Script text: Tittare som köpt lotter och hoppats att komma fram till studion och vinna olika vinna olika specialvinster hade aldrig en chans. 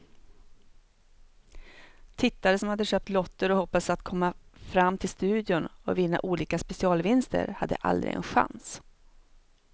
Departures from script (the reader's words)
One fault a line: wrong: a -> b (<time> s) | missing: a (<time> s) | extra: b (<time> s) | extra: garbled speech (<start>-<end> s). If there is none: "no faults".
extra: hade (2.7 s)
missing: vinna olika (6.6 s)